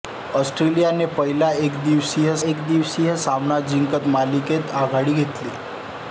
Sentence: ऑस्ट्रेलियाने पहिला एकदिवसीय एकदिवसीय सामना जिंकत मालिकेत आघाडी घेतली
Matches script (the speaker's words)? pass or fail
pass